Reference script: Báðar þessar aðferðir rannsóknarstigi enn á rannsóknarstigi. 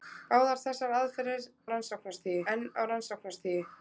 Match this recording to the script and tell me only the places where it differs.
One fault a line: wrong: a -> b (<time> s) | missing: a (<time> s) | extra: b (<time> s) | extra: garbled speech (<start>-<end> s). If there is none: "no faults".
no faults